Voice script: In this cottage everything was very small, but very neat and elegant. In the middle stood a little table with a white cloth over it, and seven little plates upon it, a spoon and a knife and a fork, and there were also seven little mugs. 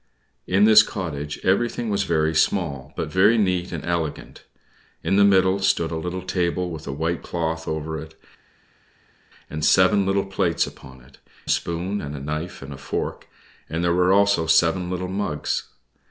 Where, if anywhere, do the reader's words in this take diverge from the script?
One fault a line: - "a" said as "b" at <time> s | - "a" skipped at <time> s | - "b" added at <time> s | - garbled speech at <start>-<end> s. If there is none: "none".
none